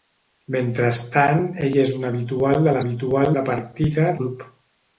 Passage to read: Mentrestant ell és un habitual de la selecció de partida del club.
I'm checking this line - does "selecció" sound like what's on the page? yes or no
no